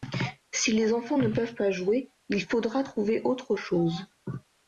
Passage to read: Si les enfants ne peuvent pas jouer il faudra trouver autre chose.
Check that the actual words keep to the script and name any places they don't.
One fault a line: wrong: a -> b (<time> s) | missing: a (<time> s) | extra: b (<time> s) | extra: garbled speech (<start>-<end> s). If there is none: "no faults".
no faults